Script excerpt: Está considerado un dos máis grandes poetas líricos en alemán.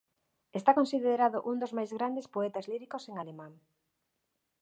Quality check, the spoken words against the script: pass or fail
pass